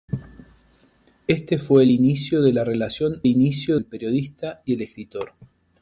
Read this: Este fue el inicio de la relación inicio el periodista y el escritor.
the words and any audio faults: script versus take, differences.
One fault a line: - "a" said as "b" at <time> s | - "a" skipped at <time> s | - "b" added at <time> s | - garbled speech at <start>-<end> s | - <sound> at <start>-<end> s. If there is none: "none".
none